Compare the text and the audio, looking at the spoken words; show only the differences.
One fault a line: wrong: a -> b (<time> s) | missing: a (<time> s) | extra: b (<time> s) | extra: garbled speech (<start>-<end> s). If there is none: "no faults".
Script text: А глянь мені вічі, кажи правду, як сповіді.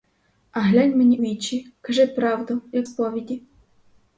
no faults